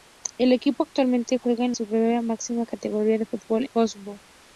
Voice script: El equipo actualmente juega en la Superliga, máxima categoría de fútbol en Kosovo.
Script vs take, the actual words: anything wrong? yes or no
yes